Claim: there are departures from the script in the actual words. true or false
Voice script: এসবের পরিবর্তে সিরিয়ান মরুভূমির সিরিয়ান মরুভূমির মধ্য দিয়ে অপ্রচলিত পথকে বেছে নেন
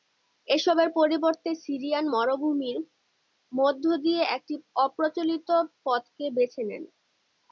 true